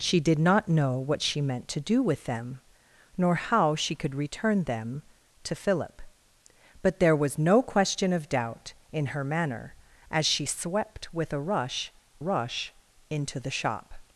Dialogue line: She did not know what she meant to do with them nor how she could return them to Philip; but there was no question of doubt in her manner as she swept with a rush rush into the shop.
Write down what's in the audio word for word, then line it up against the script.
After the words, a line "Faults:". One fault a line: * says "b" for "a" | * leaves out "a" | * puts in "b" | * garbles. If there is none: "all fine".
She did not know what she meant to do with them nor how she could return them to Philip; but there was no question of doubt in her manner as she swept with a rush rush into the shop.
Faults:
all fine